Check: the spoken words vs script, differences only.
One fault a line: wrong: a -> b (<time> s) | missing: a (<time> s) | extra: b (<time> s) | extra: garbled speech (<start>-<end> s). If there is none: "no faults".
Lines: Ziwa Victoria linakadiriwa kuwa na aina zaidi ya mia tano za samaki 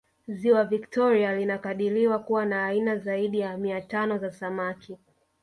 no faults